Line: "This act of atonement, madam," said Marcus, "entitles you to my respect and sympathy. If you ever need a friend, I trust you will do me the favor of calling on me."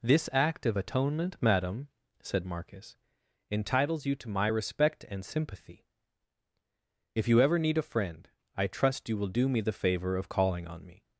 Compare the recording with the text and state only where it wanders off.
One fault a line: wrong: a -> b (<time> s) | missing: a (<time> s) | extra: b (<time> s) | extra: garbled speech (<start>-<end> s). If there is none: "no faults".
no faults